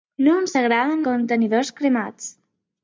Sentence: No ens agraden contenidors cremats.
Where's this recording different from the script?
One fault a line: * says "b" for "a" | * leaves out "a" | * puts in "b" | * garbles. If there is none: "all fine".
all fine